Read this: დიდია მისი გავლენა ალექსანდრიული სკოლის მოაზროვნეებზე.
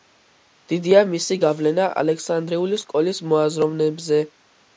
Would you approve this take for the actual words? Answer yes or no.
yes